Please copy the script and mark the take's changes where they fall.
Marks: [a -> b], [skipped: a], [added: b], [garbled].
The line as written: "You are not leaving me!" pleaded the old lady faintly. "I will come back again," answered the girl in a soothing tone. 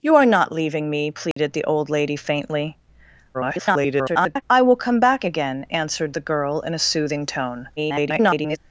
"You are not leaving me!" pleaded the old lady faintly. [garbled] "I will come back again," answered the girl in a soothing tone. [garbled]